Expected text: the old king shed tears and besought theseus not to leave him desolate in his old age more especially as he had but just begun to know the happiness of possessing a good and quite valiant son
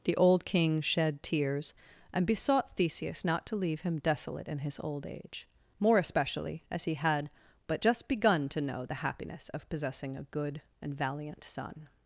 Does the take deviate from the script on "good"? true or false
false